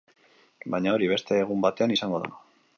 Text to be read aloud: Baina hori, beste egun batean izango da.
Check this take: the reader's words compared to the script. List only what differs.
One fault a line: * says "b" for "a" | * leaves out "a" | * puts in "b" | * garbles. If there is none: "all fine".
all fine